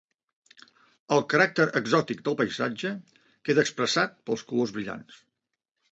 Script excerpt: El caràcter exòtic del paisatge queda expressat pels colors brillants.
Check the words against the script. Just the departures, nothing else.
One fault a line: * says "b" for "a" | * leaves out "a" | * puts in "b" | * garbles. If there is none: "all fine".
all fine